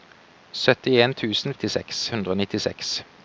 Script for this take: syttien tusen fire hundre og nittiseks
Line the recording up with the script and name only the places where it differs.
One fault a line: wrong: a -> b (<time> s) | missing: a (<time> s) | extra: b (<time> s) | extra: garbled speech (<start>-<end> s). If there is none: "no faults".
wrong: fire -> nittiseks (1.5 s)